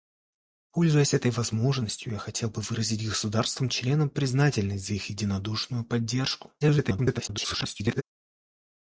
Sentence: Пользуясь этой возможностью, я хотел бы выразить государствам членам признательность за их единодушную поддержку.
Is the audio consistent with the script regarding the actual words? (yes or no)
no